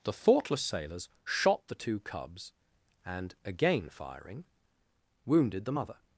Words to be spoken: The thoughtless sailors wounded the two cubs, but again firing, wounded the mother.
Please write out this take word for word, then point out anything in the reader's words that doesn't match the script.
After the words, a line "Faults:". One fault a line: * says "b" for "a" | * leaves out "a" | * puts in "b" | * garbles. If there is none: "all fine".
The thoughtless sailors shot the two cubs, and again firing, wounded the mother.
Faults:
* says "shot" for "wounded"
* says "and" for "but"